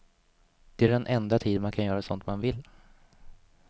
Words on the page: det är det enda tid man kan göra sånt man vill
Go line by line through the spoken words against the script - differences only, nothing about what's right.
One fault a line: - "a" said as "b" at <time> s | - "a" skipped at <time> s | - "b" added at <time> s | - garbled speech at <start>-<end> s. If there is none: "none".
- "det" said as "den" at 0.9 s